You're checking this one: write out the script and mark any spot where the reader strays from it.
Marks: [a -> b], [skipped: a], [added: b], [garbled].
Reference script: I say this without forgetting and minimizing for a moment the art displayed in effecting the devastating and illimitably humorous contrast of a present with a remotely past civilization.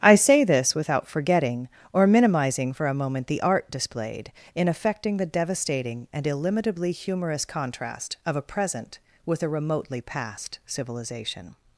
I say this without forgetting [and -> or] minimizing for a moment the art displayed in effecting the devastating and illimitably humorous contrast of a present with a remotely past civilization.